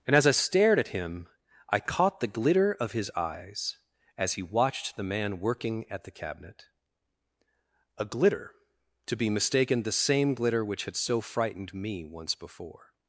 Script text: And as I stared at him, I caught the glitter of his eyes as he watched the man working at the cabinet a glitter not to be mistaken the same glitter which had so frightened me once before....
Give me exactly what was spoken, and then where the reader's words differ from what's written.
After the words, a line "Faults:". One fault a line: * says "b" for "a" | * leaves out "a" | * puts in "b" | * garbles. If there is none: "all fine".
And as I stared at him, I caught the glitter of his eyes as he watched the man working at the cabinet a glitter to be mistaken the same glitter which had so frightened me once before....
Faults:
* leaves out "not"